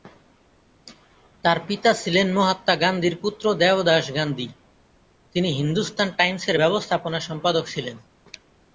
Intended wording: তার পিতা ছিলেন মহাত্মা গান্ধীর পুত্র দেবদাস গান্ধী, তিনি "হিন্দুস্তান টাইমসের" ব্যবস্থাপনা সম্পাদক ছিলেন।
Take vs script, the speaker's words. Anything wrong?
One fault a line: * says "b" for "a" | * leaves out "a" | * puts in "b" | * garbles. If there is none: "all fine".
all fine